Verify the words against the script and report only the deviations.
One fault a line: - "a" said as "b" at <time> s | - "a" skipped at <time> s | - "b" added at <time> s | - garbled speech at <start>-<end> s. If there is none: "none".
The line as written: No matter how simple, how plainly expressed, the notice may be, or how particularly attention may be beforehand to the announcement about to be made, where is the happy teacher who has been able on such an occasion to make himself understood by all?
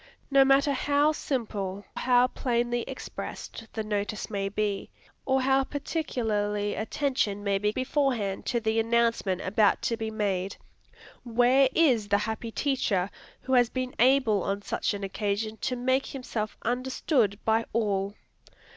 none